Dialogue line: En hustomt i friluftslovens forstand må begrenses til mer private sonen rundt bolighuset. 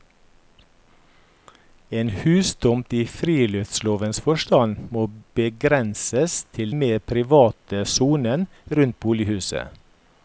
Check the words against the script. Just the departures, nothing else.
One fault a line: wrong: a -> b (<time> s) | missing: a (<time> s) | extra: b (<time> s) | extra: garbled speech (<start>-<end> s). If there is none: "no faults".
no faults